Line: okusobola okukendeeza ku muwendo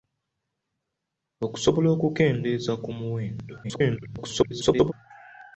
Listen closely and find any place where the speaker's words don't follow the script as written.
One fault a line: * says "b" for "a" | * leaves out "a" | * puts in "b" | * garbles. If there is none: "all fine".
* garbles